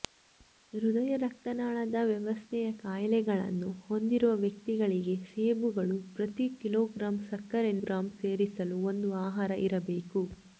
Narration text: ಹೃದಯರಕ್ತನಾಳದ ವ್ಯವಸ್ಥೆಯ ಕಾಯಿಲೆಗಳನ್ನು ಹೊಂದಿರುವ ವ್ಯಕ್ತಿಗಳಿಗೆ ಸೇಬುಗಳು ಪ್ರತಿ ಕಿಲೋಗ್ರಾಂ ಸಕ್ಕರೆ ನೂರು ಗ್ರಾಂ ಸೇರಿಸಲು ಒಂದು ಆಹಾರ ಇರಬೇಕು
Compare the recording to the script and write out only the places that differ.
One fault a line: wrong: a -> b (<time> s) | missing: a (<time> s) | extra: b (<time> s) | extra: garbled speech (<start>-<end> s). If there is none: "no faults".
missing: ನೂರು (7.7 s)